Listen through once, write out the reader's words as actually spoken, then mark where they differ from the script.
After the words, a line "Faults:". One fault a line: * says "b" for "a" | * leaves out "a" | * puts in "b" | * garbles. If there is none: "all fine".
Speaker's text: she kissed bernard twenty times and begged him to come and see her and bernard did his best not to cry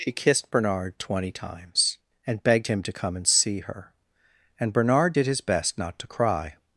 she kissed bernard twenty times and begged him to come and see her and bernard did his best not to cry
Faults:
all fine